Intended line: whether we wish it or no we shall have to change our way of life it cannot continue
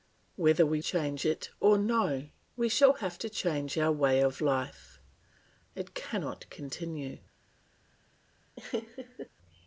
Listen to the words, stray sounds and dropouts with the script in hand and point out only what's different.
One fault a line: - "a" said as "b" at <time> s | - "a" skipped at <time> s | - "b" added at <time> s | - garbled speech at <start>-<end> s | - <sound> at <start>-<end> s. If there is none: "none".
- "wish" said as "change" at 0.8 s
- laugh at 8.6-9.3 s